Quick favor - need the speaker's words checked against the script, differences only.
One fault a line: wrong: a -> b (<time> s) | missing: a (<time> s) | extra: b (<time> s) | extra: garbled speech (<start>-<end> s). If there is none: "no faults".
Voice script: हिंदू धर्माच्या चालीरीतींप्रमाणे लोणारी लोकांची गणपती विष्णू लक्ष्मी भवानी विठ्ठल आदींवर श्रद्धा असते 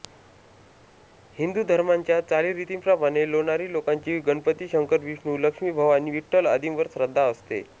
extra: शंकर (4.7 s)